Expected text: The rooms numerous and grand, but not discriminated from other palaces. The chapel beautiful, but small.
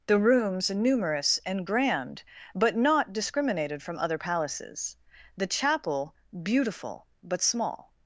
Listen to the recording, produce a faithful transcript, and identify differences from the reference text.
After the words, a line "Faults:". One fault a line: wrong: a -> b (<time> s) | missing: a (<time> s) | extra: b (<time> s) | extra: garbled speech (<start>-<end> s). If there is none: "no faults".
The rooms numerous and grand, but not discriminated from other palaces. The chapel beautiful, but small.
Faults:
no faults